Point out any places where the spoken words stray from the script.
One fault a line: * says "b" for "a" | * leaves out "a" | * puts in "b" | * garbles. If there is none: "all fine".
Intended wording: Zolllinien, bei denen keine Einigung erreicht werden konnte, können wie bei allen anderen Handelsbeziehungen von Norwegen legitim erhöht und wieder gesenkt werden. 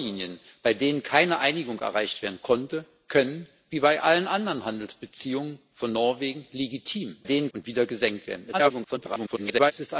* says "denen" for "erhöht"
* garbles